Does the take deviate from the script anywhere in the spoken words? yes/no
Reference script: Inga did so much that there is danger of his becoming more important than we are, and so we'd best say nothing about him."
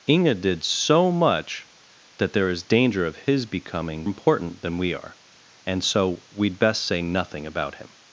yes